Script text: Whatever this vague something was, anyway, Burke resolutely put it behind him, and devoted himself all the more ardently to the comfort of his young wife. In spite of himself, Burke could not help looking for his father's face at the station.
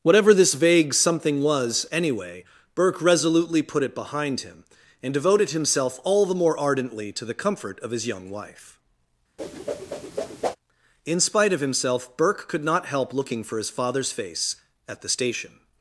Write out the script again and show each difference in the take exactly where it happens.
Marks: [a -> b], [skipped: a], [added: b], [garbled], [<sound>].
Whatever this vague something was, anyway, Burke resolutely put it behind him, and devoted himself all the more ardently to the comfort of his young wife. [whoosh] In spite of himself, Burke could not help looking for his father's face at the station.